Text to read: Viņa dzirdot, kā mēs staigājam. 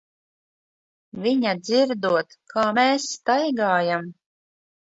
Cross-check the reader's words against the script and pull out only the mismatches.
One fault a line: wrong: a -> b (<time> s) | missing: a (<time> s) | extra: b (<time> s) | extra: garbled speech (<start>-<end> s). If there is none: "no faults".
no faults